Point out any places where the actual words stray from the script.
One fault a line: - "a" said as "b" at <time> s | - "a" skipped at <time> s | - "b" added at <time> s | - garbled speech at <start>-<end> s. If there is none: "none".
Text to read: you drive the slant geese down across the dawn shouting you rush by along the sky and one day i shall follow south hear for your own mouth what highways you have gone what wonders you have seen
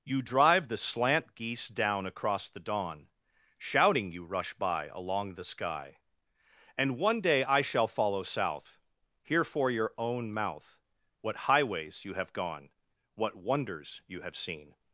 none